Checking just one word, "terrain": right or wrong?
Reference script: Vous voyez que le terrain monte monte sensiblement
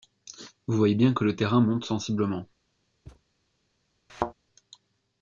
right